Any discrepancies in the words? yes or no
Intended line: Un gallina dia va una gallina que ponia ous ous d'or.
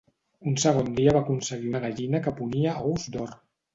yes